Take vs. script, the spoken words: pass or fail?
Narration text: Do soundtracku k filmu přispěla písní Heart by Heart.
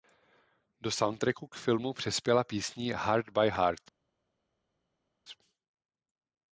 pass